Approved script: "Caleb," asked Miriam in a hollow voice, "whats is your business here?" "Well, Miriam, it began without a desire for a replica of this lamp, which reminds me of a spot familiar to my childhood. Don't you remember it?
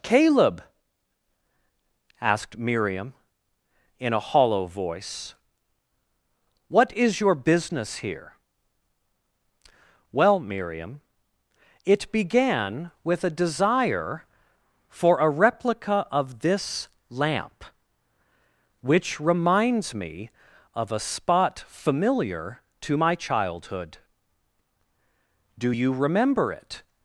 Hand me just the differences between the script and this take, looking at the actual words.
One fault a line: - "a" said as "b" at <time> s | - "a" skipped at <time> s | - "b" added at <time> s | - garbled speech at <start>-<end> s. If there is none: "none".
- "whats" said as "what" at 6.7 s
- "without" said as "with" at 13.0 s
- "Don't" said as "Do" at 25.6 s